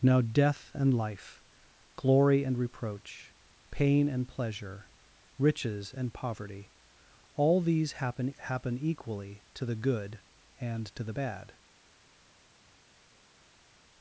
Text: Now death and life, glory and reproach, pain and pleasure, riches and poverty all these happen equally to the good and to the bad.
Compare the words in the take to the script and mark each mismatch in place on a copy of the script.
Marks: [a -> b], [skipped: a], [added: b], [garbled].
Now death and life, glory and reproach, pain and pleasure, riches and poverty all these happen [added: happen] equally to the good and to the bad.